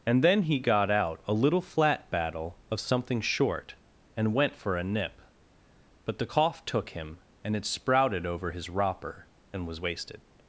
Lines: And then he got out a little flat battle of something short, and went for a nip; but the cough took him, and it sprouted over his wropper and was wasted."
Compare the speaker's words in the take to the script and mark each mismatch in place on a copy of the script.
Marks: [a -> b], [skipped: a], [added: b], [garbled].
And then he got out a little flat battle of something short, and went for a nip; but the cough took him, and it sprouted over his wropper and was wasted."